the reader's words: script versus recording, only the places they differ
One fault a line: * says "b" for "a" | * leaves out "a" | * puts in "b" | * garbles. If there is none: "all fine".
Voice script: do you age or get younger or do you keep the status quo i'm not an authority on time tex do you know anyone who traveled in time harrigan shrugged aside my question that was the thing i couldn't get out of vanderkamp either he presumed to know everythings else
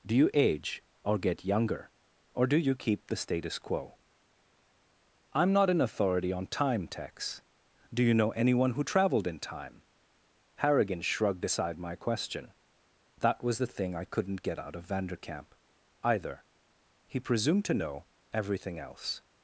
* says "everything" for "everythings"